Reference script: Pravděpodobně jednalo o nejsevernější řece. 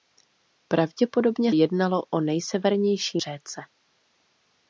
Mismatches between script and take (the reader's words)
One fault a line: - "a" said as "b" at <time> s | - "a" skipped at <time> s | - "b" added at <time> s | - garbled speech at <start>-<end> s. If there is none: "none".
none